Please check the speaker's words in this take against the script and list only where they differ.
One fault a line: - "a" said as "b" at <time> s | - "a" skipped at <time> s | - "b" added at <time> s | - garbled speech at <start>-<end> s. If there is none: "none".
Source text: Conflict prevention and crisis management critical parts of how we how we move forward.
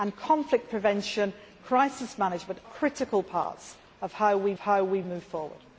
none